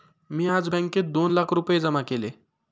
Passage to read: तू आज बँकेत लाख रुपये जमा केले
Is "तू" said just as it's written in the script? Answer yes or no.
no